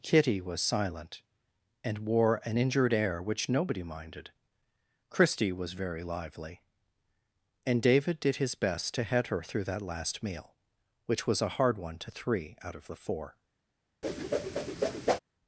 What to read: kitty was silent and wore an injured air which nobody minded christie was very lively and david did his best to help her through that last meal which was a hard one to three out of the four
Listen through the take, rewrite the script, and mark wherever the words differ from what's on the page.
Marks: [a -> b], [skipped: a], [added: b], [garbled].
kitty was silent and wore an injured air which nobody minded christie was very lively and david did his best to [help -> head] her through that last meal which was a hard one to three out of the four